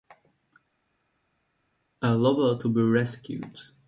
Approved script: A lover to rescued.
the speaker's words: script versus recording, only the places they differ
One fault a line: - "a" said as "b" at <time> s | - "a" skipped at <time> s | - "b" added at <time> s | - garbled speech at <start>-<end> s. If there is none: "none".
- "be" added at 2.7 s